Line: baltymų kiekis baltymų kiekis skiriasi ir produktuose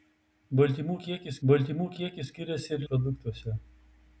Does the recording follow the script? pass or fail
pass